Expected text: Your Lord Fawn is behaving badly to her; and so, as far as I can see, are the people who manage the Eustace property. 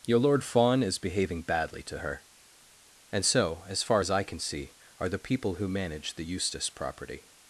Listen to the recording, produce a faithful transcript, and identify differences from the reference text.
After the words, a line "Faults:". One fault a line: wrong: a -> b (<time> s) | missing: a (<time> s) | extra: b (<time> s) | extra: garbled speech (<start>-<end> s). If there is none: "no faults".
Your Lord Fawn is behaving badly to her; and so, as far as I can see, are the people who manage the Eustace property.
Faults:
no faults